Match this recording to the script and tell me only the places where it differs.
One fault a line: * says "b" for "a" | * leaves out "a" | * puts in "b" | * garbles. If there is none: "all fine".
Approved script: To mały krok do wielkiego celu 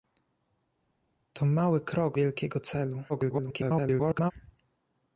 * leaves out "do"
* garbles